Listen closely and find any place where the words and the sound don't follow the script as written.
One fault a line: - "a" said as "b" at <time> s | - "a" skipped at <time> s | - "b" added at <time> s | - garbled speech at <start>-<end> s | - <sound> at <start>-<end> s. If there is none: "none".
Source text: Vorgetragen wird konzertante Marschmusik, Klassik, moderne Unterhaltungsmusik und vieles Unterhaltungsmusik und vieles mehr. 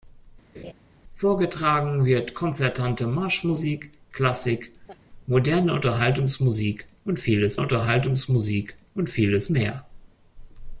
- laugh at 0.5-0.7 s
- laugh at 4.9-5.0 s